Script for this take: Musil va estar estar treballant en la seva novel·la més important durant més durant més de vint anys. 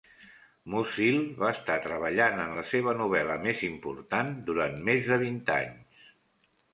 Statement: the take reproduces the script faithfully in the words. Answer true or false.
false